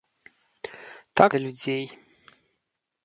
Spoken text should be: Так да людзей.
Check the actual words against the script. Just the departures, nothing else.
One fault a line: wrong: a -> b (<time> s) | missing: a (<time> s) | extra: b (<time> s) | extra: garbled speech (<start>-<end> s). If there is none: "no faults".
no faults